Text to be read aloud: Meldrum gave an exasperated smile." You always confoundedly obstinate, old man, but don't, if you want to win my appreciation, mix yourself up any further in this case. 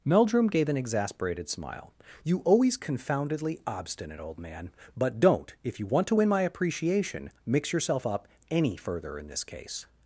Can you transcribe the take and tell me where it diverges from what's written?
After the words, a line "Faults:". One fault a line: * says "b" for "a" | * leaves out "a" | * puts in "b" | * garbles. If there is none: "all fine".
Meldrum gave an exasperated smile." You always confoundedly obstinate, old man, but don't, if you want to win my appreciation, mix yourself up any further in this case.
Faults:
all fine